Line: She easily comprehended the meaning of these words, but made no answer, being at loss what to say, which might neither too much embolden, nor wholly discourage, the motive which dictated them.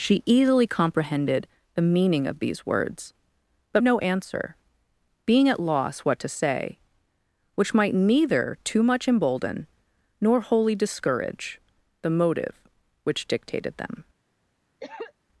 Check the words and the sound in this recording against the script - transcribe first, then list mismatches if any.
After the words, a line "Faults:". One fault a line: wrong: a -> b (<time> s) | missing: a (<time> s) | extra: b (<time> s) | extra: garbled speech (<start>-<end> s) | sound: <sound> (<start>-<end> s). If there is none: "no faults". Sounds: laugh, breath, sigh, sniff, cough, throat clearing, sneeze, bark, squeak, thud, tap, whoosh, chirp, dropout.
She easily comprehended the meaning of these words, but no answer, being at loss what to say, which might neither too much embolden, nor wholly discourage, the motive which dictated them.
Faults:
missing: made (3.8 s)
sound: cough (14.8-15.1 s)